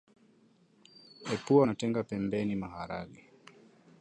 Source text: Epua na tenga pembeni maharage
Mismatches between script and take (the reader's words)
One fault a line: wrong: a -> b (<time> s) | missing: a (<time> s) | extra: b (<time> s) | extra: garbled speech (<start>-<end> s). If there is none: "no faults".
no faults